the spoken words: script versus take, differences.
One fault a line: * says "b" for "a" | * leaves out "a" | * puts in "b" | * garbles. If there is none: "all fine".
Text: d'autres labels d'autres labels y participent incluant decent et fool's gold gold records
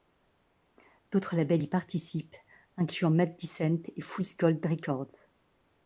* leaves out "d'autres labels"
* puts in "mad"
* leaves out "gold"